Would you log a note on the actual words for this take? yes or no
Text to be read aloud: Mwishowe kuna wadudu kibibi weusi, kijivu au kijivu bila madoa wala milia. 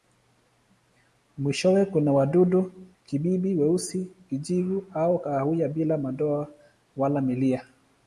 yes